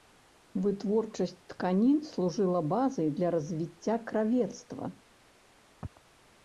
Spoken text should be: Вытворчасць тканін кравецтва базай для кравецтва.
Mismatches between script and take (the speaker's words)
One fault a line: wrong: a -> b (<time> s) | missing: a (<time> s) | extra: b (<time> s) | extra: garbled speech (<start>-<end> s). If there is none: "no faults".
wrong: кравецтва -> служыла (2.1 s)
extra: развіцця (3.4 s)